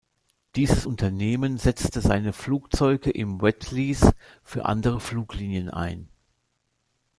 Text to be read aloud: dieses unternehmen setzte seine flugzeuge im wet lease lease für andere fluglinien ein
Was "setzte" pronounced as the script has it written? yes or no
yes